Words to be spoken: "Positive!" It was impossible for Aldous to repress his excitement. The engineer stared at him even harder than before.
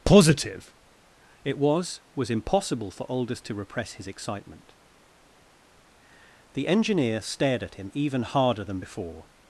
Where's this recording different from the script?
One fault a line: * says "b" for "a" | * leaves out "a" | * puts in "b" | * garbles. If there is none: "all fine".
* puts in "was"